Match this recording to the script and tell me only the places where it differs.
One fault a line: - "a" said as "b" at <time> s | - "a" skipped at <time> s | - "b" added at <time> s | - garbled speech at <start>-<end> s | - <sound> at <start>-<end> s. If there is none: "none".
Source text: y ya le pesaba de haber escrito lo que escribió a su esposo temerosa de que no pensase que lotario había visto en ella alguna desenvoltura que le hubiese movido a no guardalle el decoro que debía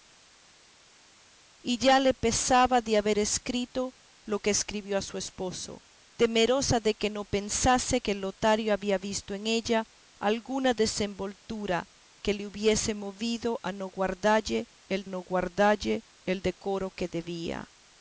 - "no guardalle el" added at 15.0 s